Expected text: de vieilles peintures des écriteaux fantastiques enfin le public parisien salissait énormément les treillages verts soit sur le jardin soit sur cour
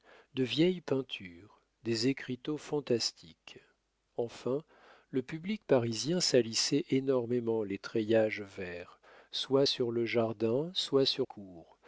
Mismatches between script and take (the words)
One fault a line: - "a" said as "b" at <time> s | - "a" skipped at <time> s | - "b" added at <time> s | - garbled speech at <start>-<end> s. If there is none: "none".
none